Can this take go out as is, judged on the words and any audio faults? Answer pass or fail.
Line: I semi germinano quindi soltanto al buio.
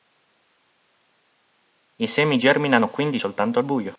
pass